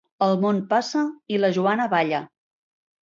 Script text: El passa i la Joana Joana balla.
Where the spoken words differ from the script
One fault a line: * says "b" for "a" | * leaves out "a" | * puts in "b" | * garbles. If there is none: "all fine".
* puts in "món"
* leaves out "Joana"